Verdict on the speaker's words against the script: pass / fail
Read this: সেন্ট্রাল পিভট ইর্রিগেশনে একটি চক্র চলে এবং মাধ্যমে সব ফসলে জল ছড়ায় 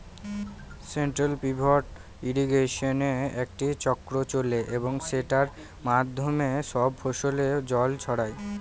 fail